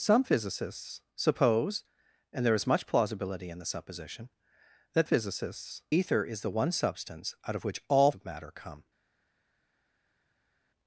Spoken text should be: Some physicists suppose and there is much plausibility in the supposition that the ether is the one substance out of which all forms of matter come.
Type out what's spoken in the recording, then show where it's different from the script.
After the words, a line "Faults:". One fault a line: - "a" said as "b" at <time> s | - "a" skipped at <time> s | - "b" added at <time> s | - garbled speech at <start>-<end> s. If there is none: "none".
Some physicists suppose and there is much plausibility in the supposition that physicists ether is the one substance out of which all of matter come.
Faults:
- "the" said as "physicists" at 5.0 s
- "forms" skipped at 8.1 s